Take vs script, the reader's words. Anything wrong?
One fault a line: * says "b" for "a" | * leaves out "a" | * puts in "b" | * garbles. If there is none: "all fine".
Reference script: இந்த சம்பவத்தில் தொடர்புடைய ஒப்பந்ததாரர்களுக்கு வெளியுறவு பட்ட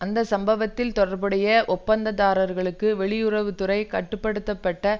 * says "அந்த" for "இந்த"
* puts in "துறை கட்டு படுத்த"